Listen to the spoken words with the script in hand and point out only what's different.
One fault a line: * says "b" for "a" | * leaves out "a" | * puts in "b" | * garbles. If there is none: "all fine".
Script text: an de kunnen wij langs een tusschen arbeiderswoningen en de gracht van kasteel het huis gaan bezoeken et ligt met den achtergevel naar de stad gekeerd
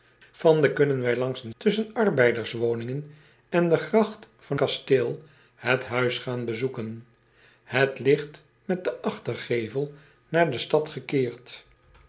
all fine